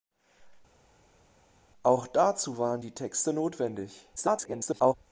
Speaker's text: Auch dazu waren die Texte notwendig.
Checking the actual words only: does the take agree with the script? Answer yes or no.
no